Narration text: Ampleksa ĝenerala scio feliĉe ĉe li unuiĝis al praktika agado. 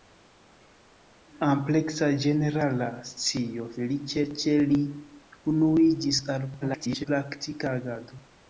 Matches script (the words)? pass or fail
fail